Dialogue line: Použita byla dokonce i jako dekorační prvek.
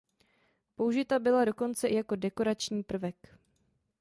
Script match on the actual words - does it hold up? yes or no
yes